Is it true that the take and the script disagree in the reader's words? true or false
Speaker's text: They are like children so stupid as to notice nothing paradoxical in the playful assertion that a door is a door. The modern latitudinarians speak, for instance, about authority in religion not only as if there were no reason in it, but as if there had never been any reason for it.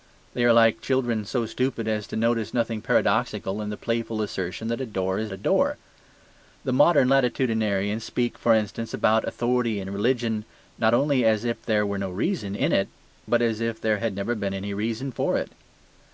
false